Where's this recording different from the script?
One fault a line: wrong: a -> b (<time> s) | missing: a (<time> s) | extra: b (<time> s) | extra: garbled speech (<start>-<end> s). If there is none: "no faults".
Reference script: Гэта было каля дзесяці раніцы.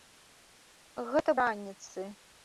missing: было каля дзесяці (1.3 s)